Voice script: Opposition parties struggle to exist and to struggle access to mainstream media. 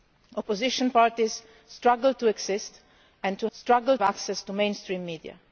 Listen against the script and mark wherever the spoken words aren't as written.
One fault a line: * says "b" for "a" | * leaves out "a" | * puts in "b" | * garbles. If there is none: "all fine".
all fine